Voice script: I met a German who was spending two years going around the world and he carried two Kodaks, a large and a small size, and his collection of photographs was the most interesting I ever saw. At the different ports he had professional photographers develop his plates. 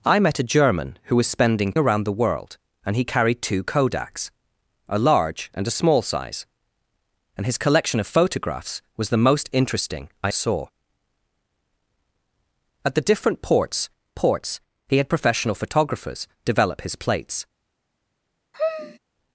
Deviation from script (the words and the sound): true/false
true